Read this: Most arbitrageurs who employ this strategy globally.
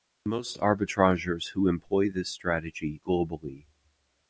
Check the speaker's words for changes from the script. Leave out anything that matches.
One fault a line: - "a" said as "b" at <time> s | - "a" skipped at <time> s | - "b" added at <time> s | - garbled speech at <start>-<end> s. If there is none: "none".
none